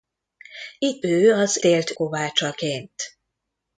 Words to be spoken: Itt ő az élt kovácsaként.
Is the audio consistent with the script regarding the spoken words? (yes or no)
yes